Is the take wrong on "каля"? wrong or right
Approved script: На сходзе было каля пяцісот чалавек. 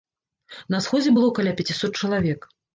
right